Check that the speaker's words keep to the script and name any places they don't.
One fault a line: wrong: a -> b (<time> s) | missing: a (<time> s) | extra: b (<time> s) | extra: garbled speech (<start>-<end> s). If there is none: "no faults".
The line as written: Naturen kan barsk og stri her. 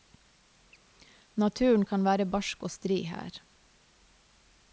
extra: være (2.1 s)